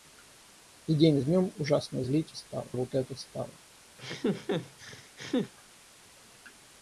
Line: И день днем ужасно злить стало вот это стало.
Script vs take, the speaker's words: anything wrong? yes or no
no